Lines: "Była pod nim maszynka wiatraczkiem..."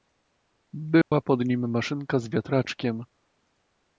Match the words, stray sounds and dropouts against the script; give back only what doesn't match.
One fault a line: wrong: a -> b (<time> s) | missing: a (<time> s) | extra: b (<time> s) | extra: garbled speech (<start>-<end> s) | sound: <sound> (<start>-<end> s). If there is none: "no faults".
sound: dropout (1.0-1.1 s)
extra: z (2.2 s)